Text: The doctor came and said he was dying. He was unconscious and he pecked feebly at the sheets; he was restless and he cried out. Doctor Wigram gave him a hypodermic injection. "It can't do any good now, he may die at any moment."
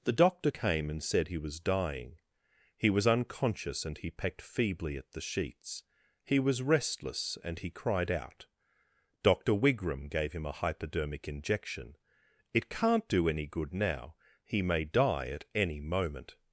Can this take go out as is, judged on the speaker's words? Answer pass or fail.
pass